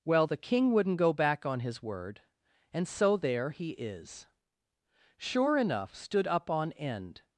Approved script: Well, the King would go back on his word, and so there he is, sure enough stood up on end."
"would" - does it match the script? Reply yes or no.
no